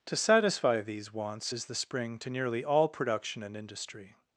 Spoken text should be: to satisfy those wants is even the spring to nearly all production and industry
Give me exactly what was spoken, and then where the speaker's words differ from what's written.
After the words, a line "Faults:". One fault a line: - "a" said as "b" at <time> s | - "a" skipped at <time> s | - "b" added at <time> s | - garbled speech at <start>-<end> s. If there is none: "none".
to satisfy these wants is the spring to nearly all production and industry
Faults:
- "those" said as "these" at 0.8 s
- "even" skipped at 1.7 s